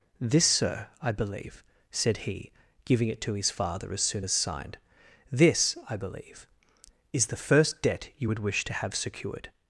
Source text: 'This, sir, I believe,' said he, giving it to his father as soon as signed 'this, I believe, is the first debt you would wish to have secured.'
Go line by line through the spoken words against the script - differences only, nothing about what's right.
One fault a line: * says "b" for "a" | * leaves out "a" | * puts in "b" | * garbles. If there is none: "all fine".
all fine